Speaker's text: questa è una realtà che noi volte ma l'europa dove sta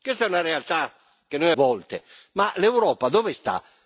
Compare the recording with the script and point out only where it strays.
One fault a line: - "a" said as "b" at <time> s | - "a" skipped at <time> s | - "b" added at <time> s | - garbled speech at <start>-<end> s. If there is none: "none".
none